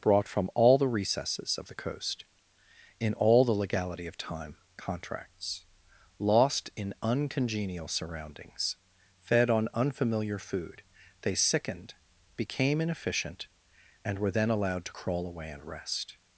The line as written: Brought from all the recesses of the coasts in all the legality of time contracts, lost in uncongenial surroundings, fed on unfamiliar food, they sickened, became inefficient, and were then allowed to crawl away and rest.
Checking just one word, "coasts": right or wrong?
wrong